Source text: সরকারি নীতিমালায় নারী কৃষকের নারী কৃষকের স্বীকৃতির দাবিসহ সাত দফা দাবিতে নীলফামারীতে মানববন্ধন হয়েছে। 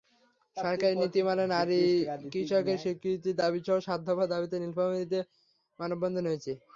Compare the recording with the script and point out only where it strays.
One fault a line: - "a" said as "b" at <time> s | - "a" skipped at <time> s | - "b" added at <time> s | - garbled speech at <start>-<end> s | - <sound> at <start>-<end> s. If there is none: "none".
- "নারী কৃষকের" skipped at 2.8 s